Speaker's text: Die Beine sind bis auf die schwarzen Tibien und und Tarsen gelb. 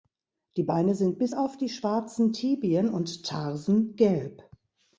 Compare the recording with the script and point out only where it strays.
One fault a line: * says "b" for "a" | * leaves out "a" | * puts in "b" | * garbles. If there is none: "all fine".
* leaves out "und"